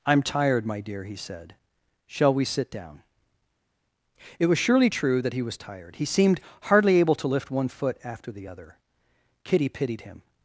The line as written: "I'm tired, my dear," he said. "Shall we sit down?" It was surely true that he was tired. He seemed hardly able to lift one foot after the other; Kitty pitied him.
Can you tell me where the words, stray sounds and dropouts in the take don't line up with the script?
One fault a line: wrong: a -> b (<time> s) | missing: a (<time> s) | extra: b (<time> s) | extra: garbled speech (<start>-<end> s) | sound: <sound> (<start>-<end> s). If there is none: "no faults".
no faults